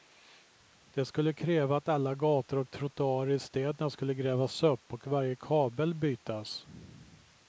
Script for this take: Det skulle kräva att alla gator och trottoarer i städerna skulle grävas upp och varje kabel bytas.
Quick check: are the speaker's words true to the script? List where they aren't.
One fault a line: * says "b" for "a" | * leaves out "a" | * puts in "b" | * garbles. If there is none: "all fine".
all fine